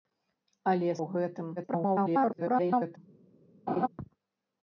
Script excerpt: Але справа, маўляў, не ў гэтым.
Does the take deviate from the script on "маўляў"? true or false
true